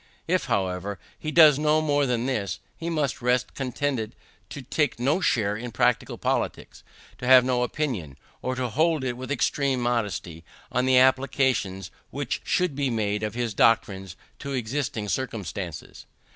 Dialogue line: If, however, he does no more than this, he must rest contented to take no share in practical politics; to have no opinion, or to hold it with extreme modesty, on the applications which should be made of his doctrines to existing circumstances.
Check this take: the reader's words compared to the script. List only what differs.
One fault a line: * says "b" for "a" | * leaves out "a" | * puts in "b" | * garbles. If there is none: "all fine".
all fine